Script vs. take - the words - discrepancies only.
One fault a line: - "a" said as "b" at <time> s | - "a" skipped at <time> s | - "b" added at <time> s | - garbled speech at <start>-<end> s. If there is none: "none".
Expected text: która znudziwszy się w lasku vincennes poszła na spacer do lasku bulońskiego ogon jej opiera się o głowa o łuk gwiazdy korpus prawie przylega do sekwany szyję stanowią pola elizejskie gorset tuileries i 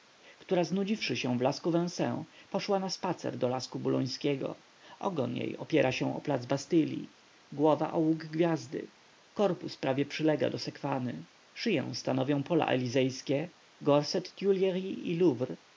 - "plac bastylli" added at 6.2 s